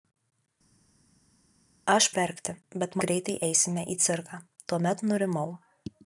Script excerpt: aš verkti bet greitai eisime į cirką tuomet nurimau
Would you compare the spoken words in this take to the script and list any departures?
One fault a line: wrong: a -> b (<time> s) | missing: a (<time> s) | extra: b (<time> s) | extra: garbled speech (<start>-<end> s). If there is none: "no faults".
no faults